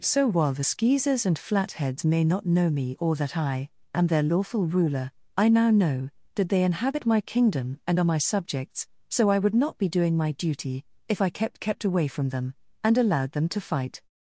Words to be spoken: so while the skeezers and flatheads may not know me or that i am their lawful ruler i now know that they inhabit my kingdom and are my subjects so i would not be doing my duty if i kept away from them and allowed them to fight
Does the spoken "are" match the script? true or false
true